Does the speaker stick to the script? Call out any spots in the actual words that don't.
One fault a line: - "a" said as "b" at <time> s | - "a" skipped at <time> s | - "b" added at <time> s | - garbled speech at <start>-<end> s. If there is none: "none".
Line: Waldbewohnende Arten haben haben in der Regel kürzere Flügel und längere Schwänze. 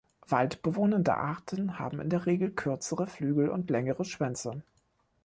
- "haben" skipped at 2.0 s